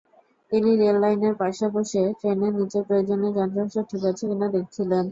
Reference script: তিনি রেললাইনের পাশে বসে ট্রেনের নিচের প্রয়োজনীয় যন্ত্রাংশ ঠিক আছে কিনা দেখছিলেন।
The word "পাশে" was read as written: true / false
true